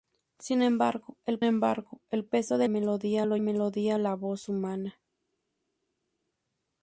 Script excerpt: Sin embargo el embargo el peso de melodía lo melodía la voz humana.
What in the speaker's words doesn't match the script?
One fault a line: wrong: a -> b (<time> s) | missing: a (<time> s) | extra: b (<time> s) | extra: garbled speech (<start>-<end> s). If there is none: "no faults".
no faults